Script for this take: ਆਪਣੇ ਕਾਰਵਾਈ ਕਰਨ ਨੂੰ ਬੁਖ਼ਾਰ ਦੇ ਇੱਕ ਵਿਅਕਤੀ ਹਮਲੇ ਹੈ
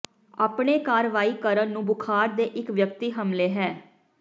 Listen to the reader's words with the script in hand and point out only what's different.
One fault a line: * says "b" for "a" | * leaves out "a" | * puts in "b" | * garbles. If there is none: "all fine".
all fine